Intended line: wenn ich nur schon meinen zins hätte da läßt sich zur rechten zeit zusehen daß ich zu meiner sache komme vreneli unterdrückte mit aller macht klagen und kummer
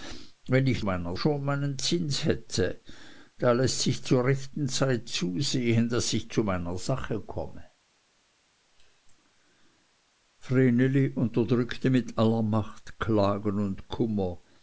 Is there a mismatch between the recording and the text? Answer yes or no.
yes